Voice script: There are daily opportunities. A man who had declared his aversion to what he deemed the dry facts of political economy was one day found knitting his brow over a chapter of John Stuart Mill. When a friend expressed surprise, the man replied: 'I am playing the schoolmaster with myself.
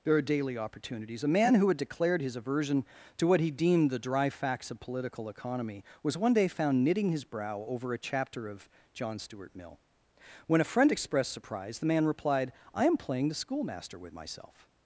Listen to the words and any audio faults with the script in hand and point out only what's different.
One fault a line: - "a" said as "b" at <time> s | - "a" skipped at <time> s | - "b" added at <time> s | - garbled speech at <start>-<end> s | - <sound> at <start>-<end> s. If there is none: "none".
none